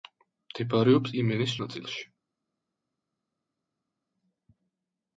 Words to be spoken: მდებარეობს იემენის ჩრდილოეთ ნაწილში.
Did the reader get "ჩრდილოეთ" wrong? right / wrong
wrong